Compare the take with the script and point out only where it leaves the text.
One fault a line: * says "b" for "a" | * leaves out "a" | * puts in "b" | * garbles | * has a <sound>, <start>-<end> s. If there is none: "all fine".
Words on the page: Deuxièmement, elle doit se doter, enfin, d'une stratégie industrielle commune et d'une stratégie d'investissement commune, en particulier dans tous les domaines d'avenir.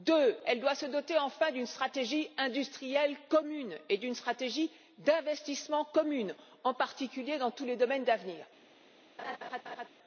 * has a laugh, 9.2-9.9 s